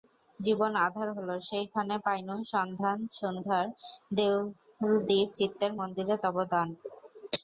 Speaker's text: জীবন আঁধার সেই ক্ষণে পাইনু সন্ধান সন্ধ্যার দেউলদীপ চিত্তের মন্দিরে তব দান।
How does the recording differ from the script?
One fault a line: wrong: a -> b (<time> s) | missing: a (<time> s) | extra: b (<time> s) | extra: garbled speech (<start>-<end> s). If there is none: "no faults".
extra: হল (1.2 s)